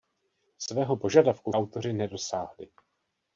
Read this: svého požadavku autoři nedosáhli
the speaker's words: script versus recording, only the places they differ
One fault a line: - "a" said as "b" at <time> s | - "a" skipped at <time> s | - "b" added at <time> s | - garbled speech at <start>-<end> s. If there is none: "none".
none